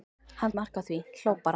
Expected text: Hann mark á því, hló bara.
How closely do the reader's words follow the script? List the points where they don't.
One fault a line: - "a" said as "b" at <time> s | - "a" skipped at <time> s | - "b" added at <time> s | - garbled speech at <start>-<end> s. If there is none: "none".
none